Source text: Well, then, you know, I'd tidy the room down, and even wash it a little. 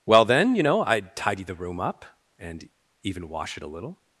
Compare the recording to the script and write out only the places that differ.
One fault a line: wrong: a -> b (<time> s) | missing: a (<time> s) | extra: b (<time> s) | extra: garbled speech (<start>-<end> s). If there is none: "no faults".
wrong: down -> up (1.8 s)